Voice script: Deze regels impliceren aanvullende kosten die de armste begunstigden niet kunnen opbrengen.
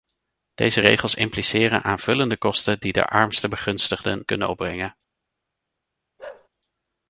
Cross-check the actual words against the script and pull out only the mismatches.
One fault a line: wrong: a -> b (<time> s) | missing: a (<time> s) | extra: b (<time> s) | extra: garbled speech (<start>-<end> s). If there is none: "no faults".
missing: niet (4.2 s)